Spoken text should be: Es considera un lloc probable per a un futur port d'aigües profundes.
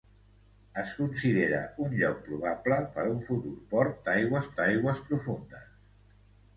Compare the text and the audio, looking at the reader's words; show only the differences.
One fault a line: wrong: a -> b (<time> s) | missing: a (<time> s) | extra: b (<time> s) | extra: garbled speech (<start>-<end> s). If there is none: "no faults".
extra: d'aigües (4.6 s)